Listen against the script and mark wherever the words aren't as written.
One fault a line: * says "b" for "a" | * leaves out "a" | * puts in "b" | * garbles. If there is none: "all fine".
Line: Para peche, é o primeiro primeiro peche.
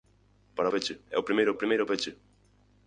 all fine